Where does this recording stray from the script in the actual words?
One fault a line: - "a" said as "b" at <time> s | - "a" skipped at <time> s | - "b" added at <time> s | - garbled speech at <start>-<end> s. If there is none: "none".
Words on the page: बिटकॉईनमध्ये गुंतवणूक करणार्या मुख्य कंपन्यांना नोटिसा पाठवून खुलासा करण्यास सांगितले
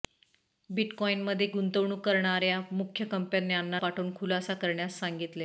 - "नोटिसा" skipped at 3.8 s